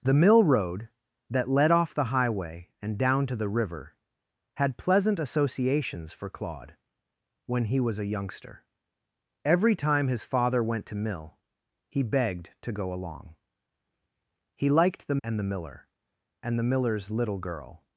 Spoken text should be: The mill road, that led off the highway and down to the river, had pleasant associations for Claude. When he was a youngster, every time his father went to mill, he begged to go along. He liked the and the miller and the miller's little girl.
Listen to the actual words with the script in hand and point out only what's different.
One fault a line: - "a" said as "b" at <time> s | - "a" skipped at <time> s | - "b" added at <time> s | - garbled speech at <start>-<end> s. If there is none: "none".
none